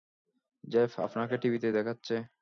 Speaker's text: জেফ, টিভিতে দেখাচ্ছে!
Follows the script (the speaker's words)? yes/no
no